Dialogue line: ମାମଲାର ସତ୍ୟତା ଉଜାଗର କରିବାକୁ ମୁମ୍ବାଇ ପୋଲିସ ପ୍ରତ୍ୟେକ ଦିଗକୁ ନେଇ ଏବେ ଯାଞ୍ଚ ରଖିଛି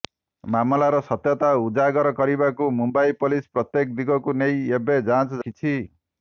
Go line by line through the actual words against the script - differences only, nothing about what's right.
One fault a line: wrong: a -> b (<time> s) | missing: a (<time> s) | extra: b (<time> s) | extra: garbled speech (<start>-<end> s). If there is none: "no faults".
no faults